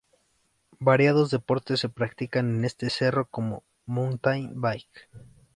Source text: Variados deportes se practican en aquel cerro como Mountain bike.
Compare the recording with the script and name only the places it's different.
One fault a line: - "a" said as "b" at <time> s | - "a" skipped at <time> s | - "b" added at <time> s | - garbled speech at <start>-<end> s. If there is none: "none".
- "aquel" said as "este" at 2.6 s